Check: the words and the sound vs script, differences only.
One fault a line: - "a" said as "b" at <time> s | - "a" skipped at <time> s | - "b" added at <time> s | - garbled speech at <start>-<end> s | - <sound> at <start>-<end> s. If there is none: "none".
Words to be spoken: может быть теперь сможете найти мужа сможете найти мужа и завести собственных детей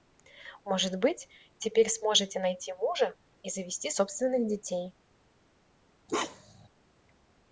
- "сможете найти мужа" skipped at 3.1 s
- bark at 6.1-6.7 s